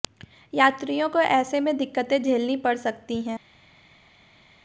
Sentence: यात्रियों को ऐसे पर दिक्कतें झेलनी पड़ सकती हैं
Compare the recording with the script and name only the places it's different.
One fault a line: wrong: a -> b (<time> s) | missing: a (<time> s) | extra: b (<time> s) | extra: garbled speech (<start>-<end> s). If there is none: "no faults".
wrong: पर -> में (1.6 s)